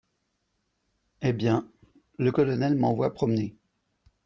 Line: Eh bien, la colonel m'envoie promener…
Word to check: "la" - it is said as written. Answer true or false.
false